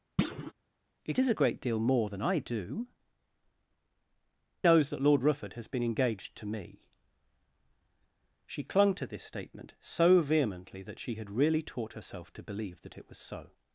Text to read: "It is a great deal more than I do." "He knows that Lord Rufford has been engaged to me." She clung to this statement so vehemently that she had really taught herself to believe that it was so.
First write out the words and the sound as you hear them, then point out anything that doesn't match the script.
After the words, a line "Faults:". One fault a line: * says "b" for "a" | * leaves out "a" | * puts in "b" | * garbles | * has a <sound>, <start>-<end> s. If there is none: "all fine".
"It is a great deal more than I do." "Knows that Lord Rufford has been engaged to me." She clung to this statement so vehemently that she had really taught herself to believe that it was so.
Faults:
* has a thud, 0.2-0.5 s
* leaves out "He"